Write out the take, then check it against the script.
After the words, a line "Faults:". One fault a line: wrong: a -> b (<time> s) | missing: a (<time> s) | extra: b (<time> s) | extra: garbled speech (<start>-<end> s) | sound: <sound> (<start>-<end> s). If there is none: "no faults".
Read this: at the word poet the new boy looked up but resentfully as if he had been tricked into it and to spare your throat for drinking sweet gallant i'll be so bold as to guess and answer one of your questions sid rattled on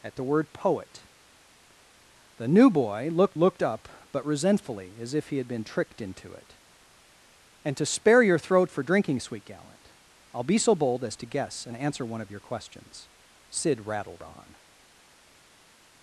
at the word poet the new boy looked looked up but resentfully as if he had been tricked into it and to spare your throat for drinking sweet gallant i'll be so bold as to guess and answer one of your questions sid rattled on
Faults:
extra: looked (3.3 s)